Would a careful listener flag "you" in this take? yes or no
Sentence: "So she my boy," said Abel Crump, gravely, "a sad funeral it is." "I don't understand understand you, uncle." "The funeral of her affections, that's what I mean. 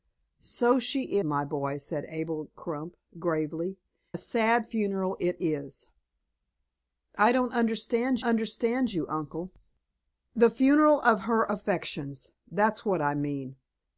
no